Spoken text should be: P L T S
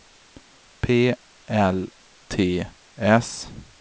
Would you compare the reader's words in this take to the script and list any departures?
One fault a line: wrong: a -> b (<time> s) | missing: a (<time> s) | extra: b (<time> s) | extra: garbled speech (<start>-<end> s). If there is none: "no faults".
no faults